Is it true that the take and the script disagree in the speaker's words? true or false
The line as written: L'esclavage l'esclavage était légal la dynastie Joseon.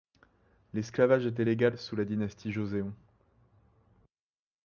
true